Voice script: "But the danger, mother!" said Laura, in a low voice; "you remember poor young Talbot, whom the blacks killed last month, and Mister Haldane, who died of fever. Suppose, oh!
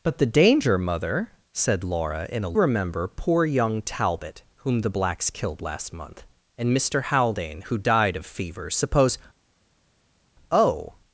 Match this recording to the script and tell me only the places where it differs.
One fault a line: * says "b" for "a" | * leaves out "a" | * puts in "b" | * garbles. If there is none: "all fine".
* leaves out "low voice you"